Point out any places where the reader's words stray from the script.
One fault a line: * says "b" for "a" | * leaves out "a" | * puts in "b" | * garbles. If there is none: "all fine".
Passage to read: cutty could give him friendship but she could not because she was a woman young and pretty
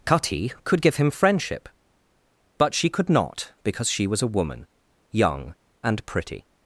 all fine